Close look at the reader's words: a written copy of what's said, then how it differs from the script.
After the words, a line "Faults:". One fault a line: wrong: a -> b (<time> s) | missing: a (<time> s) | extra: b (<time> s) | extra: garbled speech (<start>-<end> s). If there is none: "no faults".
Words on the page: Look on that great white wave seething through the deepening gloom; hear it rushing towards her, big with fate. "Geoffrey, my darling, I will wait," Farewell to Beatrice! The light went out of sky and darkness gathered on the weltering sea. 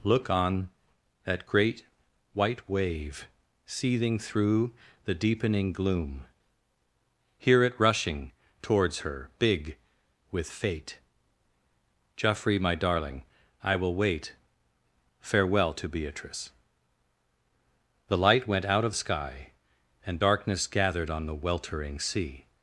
Look on that great white wave seething through the deepening gloom; hear it rushing towards her, big with fate. "Geoffrey, my darling, I will wait," Farewell to Beatrice! The light went out of sky and darkness gathered on the weltering sea.
Faults:
no faults